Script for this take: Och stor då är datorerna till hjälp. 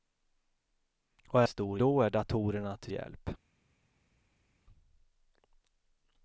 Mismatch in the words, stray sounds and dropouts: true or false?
false